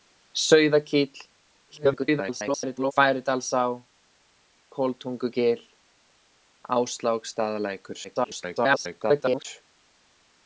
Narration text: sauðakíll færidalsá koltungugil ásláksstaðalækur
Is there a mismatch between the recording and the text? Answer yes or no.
yes